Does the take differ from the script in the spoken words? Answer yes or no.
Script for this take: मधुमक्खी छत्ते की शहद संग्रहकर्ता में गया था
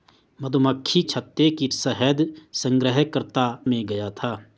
no